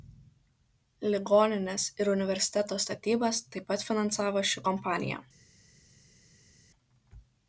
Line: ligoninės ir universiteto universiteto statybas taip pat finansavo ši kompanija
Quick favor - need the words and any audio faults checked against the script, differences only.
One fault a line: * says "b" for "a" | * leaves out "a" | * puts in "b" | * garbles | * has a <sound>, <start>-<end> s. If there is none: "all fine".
* leaves out "universiteto"